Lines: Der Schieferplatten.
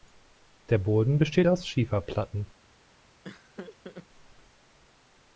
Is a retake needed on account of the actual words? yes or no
yes